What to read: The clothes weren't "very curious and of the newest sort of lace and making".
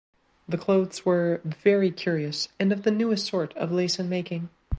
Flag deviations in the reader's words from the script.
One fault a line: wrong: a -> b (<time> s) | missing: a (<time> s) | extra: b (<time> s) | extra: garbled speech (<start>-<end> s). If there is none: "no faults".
wrong: weren't -> were (1.1 s)